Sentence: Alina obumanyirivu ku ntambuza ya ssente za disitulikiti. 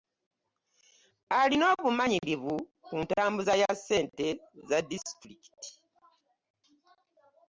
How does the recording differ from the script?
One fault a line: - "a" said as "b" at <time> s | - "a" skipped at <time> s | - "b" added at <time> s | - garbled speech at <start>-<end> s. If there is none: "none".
none